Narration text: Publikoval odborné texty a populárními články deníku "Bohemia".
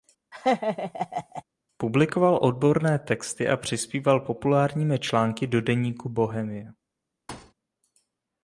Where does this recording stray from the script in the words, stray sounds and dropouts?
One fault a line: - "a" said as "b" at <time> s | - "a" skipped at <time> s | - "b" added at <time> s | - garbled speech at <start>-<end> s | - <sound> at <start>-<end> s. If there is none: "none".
- laugh at 0.3-1.4 s
- "přispíval" added at 3.6 s
- "do" added at 5.5 s
- thud at 7.3-7.5 s